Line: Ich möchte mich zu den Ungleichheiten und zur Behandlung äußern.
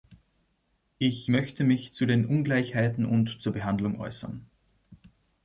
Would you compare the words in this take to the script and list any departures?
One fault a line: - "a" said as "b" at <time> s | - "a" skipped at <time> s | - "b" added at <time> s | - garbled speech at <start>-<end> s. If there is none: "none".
none